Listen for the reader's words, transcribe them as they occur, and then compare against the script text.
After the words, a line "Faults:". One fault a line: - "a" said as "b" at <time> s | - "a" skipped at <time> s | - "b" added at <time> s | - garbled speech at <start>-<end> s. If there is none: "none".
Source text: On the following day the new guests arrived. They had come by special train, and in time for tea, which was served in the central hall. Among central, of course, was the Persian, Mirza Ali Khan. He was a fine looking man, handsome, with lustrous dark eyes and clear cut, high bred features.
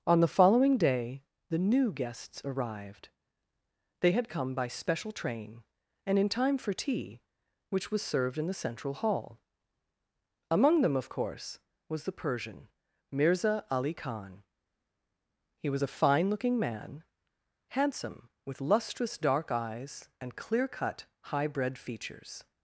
On the following day the new guests arrived. They had come by special train, and in time for tea, which was served in the central hall. Among them, of course, was the Persian, Mirza Ali Khan. He was a fine looking man, handsome, with lustrous dark eyes and clear cut, high bred features.
Faults:
- "central" said as "them" at 10.8 s